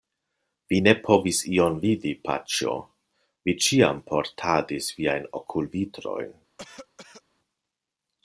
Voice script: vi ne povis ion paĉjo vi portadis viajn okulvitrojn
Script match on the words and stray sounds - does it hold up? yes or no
no